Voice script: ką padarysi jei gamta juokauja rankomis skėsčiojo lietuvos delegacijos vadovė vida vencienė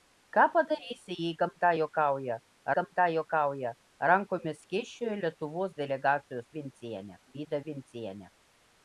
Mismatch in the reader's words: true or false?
true